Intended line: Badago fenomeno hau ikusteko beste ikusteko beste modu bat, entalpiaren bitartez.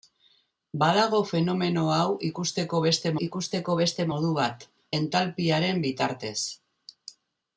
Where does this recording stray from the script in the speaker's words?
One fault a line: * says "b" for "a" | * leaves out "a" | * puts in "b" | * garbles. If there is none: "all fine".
all fine